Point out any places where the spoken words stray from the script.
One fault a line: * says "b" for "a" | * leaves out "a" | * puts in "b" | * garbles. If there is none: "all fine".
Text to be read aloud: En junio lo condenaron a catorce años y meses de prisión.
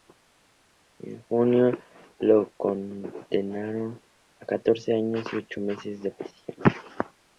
* puts in "ocho"